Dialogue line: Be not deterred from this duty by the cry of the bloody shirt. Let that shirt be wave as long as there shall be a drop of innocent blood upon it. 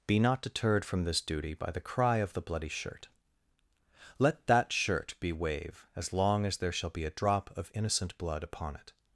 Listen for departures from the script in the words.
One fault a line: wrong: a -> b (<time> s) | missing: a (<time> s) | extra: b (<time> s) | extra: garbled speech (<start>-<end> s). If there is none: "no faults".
no faults